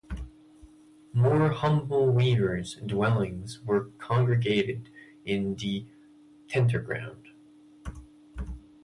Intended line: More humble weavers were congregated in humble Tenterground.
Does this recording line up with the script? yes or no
no